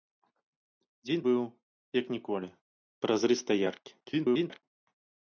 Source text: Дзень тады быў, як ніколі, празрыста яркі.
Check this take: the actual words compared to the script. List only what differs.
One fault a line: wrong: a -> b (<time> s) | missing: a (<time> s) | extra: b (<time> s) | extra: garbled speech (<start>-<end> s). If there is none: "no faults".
missing: тады (1.2 s)
extra: garbled speech (4.0-4.6 s)